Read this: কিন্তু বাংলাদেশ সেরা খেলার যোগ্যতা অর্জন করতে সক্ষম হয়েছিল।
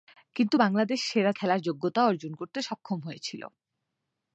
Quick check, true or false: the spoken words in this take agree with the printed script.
true